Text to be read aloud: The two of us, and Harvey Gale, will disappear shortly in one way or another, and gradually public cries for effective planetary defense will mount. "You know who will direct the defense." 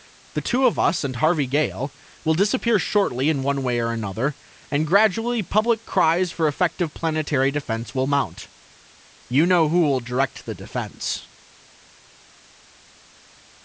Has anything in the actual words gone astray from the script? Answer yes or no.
no